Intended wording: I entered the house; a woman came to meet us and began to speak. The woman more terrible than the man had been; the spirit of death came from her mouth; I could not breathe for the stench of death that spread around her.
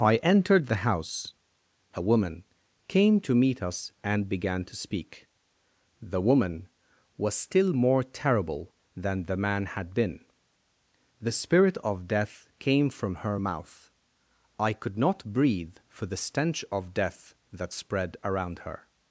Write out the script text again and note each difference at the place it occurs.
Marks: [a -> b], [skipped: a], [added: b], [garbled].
I entered the house; a woman came to meet us and began to speak. The woman [added: was still] more terrible than the man had been; the spirit of death came from her mouth; I could not breathe for the stench of death that spread around her.